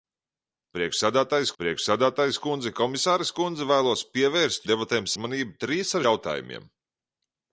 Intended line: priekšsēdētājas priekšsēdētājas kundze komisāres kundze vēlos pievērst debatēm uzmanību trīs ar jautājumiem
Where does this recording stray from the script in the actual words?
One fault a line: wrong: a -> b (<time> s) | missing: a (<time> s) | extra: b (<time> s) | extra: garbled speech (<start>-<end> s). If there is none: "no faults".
no faults